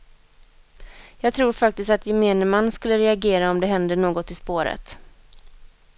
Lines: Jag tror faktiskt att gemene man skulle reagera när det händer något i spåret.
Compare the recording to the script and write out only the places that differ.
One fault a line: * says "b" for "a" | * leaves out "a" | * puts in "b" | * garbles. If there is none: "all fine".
* says "om" for "när"